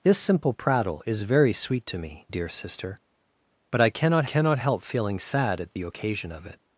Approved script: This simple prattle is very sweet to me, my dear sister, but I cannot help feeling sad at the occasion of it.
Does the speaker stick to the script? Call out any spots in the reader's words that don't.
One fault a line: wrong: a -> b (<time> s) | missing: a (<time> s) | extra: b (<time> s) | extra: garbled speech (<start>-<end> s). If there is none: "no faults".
missing: my (2.3 s)
extra: cannot (4.2 s)